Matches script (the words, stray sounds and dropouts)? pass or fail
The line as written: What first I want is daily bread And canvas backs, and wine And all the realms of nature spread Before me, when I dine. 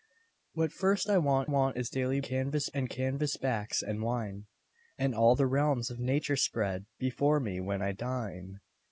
fail